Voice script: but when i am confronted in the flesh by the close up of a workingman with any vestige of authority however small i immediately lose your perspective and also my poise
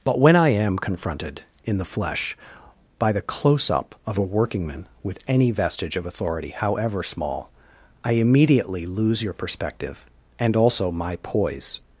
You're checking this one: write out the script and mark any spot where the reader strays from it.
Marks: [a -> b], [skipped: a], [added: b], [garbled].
but when i am confronted in the flesh by the close up of a workingman with any vestige of authority however small i immediately lose your perspective and also my poise